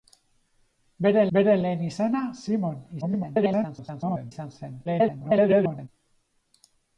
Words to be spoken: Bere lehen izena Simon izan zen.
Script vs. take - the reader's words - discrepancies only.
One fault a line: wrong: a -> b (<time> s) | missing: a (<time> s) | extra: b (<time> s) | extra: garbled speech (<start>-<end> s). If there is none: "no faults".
extra: bere (1.4 s)
extra: garbled speech (3.0-4.3 s)
extra: garbled speech (4.9-5.9 s)